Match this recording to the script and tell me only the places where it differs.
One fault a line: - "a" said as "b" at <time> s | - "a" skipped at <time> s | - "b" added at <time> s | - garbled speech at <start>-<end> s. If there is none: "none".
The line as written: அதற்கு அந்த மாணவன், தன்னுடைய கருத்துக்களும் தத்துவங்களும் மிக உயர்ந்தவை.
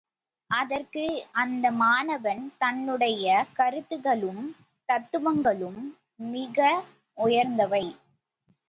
none